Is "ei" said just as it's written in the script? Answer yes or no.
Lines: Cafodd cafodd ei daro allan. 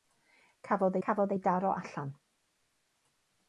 yes